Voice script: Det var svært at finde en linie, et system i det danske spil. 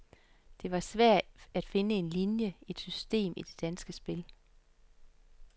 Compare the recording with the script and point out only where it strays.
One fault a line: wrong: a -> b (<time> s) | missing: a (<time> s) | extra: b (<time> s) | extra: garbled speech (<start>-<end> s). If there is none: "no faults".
no faults